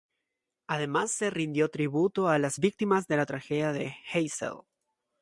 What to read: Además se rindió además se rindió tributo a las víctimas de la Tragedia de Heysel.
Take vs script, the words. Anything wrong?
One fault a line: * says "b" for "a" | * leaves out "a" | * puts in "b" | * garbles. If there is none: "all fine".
* leaves out "además se rindió"